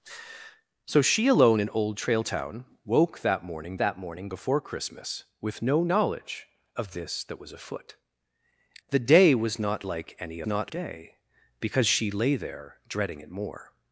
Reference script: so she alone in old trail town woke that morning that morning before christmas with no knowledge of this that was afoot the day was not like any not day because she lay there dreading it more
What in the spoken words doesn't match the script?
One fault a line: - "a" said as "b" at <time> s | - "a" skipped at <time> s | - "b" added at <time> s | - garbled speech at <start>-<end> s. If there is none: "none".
none